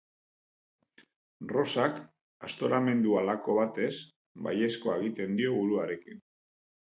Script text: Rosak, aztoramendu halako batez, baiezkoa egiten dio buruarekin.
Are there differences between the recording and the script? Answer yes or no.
no